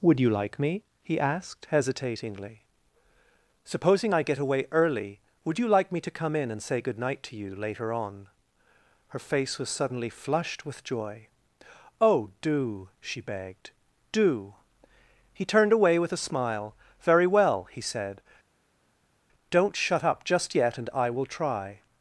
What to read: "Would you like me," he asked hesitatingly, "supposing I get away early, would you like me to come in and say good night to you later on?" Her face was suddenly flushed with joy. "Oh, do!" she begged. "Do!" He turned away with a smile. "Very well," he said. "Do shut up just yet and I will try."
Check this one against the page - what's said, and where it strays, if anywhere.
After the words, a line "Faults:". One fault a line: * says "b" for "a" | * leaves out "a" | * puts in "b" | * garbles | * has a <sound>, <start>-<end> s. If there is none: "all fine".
"Would you like me," he asked hesitatingly, "supposing I get away early, would you like me to come in and say good night to you later on?" Her face was suddenly flushed with joy. "Oh, do!" she begged. "Do!" He turned away with a smile. "Very well," he said. "Don't shut up just yet and I will try."
Faults:
* says "Don't" for "Do"